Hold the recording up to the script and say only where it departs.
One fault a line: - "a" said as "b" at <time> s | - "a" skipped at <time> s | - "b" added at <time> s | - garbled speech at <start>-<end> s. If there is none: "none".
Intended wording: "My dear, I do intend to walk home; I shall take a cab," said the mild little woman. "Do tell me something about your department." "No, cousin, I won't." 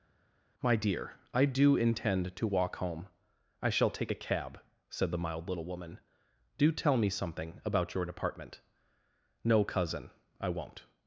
none